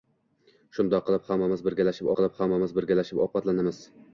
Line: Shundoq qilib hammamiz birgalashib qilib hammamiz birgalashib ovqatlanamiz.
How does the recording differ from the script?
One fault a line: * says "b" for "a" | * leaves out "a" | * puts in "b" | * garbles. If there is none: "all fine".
all fine